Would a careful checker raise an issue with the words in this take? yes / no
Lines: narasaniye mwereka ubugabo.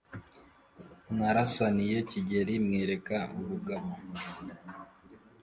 yes